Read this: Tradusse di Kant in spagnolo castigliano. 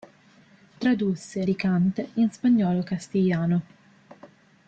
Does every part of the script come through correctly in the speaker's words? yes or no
yes